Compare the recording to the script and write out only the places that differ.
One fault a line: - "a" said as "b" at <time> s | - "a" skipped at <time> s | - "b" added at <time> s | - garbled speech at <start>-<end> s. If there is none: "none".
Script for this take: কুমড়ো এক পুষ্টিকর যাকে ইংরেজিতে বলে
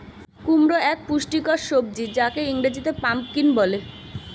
- "সবজি" added at 1.7 s
- "পাম্পকিন" added at 3.0 s